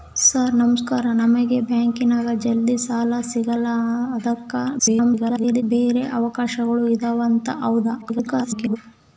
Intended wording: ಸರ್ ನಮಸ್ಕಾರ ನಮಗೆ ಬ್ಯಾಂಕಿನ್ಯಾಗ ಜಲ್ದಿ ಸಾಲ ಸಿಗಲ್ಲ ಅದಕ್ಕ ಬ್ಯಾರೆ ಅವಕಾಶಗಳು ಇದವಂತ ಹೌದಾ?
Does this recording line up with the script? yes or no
no